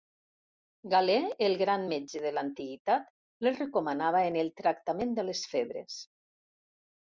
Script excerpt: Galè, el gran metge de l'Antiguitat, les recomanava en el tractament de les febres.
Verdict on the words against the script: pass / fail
pass